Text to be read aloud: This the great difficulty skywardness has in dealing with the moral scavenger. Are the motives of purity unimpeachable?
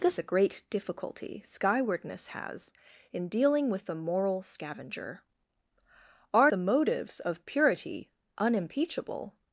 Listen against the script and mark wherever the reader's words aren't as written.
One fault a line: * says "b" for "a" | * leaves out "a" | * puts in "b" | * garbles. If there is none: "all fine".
all fine